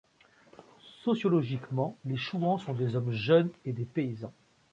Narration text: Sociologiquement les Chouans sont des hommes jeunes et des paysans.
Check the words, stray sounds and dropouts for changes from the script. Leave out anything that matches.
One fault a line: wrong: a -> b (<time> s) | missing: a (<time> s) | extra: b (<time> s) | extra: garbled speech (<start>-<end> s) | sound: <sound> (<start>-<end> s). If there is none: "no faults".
no faults